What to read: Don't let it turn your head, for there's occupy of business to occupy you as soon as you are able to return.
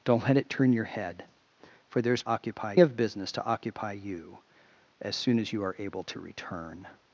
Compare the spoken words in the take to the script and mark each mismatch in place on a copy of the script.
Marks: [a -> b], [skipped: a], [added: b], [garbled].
Don't let it turn your head, for there's occupy of business to occupy you as soon as you are able to return.